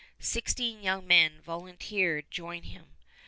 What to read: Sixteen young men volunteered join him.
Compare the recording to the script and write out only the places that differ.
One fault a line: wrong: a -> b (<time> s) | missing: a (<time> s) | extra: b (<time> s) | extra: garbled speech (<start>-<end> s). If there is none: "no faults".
no faults